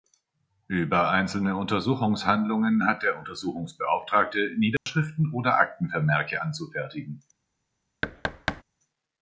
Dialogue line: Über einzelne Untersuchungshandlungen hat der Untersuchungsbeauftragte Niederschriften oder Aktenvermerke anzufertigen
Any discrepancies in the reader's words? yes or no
no